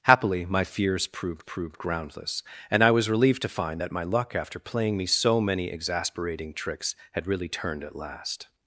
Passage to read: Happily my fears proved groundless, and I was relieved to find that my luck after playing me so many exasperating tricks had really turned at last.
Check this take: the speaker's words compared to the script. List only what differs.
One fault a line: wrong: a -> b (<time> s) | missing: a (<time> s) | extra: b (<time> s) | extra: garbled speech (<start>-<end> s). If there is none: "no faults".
extra: proved (1.4 s)